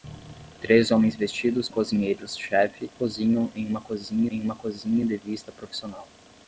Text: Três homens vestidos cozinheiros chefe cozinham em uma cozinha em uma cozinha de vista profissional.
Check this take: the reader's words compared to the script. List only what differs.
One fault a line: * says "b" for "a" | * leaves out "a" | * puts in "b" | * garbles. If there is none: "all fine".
all fine